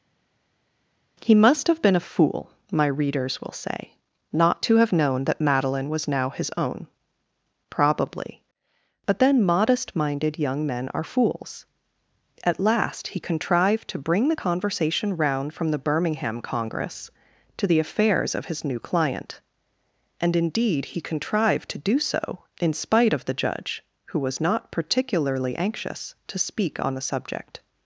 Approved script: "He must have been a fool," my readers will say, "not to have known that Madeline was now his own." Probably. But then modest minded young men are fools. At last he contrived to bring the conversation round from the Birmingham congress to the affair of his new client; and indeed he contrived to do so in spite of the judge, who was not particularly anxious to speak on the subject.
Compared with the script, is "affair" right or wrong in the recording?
wrong